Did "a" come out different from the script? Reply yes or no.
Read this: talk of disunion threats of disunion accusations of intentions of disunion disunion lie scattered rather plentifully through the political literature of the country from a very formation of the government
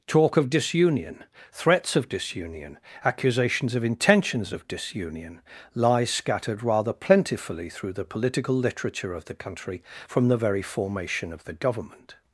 yes